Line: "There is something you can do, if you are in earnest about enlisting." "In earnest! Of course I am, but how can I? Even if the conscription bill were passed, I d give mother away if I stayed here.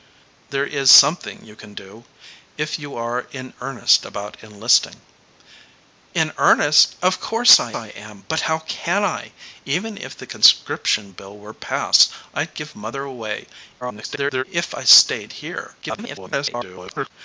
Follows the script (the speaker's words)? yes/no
no